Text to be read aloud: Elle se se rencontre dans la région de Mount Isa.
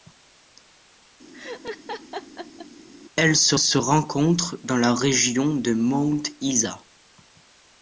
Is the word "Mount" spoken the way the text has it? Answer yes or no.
yes